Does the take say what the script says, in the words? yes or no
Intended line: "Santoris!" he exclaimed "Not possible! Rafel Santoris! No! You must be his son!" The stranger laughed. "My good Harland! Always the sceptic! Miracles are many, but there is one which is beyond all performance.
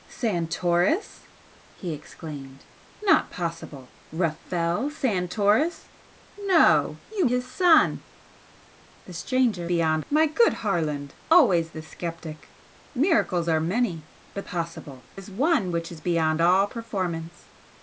no